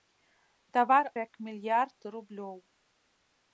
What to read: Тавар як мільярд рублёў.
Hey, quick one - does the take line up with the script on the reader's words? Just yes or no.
yes